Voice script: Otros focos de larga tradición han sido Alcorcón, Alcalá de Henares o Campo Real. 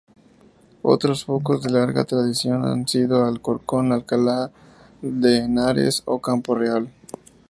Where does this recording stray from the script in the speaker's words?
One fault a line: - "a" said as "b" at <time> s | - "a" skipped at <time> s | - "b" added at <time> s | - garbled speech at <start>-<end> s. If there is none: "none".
none